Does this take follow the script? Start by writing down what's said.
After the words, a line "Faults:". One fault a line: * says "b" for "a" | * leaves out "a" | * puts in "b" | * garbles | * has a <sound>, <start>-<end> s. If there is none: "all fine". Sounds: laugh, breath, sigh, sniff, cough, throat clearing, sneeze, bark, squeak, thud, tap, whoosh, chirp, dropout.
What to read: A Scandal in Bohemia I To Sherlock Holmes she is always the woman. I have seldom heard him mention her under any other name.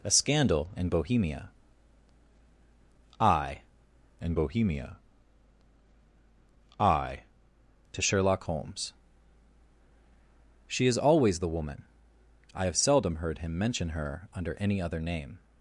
A Scandal in Bohemia I in Bohemia I To Sherlock Holmes she is always the woman. I have seldom heard him mention her under any other name.
Faults:
* puts in "in Bohemia I"